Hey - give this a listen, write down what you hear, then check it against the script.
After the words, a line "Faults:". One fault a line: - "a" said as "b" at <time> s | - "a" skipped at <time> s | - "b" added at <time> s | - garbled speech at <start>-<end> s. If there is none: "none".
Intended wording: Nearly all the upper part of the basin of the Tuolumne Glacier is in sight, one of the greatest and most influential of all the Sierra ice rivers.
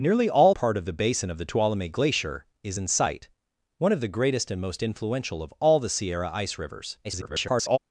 Nearly all part of the basin of the Tuolumne Glacier is in sight, one of the greatest and most influential of all the Sierra ice rivers. [garbled]
Faults:
- "the upper" skipped at 0.6 s
- garbled speech at 7.0-7.8 s